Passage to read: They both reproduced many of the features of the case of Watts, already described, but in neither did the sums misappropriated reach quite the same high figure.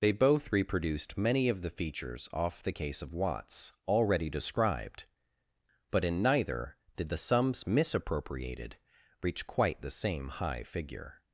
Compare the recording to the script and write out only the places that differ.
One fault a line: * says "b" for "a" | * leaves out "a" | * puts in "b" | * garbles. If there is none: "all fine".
* says "off" for "of"